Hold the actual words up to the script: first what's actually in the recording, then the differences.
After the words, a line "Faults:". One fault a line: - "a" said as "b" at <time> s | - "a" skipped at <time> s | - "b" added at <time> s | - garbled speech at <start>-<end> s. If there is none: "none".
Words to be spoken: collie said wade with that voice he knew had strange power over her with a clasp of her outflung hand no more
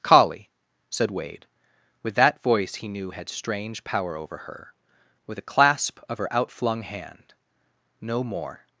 collie said wade with that voice he knew had strange power over her with a clasp of her outflung hand no more
Faults:
none